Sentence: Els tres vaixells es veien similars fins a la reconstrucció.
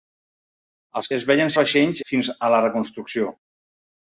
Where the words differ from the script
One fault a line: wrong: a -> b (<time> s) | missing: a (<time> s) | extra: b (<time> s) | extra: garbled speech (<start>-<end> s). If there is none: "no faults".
missing: tres vaixells (1.1 s)
wrong: similars -> vaixells (1.6 s)